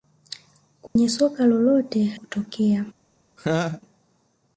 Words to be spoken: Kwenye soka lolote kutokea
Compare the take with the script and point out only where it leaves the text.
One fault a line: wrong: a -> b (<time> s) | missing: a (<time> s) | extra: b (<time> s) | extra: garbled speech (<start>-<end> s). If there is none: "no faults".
no faults